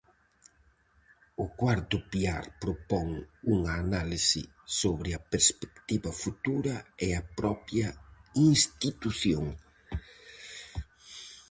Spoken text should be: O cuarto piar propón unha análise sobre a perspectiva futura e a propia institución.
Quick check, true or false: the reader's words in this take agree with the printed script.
true